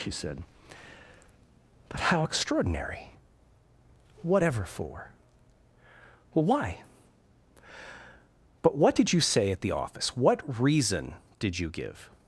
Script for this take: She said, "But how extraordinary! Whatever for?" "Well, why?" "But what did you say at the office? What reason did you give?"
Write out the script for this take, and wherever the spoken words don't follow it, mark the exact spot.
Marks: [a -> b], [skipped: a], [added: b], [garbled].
She said, "But how extraordinary! Whatever for?" "Well, why?" "But what did you say at the office? What reason did you give?"